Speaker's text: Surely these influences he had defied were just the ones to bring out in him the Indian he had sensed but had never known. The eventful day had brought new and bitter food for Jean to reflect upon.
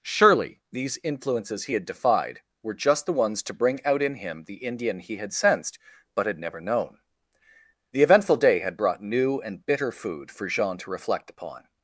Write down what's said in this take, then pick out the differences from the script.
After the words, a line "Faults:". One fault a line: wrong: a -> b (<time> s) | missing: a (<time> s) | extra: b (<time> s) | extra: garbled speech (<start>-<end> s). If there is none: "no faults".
Surely these influences he had defied were just the ones to bring out in him the Indian he had sensed but had never known. The eventful day had brought new and bitter food for Jean to reflect upon.
Faults:
no faults